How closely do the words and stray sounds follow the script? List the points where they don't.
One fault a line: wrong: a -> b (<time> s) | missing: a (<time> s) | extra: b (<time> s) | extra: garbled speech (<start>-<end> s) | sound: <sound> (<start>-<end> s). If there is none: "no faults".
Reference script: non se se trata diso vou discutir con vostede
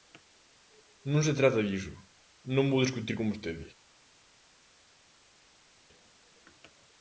missing: se (1.4 s)
extra: non (2.5 s)